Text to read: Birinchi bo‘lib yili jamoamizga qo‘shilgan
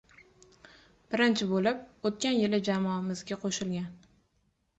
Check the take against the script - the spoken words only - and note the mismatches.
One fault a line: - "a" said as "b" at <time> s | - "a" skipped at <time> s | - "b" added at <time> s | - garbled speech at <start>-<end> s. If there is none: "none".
- "o‘tgan" added at 2.1 s